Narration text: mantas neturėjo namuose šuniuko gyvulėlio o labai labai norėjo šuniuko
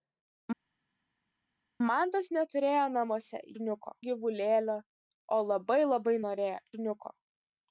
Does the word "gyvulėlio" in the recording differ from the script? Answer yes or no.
no